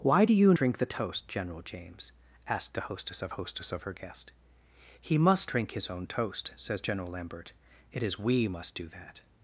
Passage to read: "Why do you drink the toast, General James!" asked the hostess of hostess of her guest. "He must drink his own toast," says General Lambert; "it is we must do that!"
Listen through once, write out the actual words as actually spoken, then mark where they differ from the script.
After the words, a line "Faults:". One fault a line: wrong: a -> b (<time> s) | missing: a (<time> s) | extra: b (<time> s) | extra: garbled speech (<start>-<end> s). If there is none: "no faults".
"Why do you drink the toast, General James!" asked the hostess of hostess of her guest. "He must drink his own toast," says General Lambert; "it is we must do that!"
Faults:
no faults